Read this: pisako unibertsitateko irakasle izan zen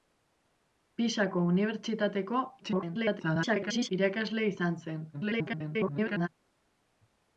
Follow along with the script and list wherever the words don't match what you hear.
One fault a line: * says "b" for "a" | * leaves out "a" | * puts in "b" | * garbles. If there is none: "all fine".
* garbles
* garbles